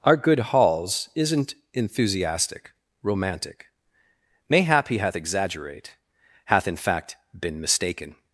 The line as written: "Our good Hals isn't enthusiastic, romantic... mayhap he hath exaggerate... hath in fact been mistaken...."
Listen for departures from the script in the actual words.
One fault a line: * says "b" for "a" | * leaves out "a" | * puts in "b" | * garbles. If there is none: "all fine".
all fine